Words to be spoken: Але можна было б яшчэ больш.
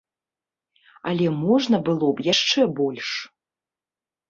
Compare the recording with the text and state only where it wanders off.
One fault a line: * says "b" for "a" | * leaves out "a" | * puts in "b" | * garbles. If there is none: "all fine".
all fine